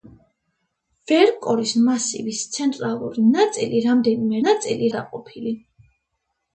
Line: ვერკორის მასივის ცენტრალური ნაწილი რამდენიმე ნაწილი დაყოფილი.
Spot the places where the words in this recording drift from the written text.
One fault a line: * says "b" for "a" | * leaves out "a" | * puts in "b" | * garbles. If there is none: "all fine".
all fine